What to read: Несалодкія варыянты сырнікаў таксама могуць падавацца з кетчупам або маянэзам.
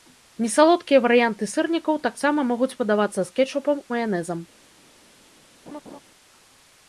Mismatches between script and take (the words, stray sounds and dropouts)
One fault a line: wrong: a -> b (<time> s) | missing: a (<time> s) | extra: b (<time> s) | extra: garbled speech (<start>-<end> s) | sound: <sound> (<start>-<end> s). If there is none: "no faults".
missing: або (3.8 s)
sound: laugh (5.7-6.0 s)